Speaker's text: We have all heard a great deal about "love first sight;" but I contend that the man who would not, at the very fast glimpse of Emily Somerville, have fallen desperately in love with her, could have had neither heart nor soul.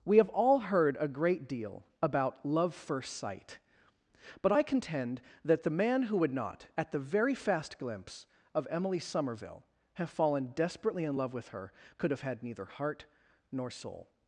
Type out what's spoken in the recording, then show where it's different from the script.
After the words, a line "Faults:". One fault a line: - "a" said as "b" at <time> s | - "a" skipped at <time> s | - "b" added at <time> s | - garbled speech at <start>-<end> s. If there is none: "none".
We have all heard a great deal about "love first sight;" but I contend that the man who would not, at the very fast glimpse of Emily Somerville, have fallen desperately in love with her, could have had neither heart nor soul.
Faults:
none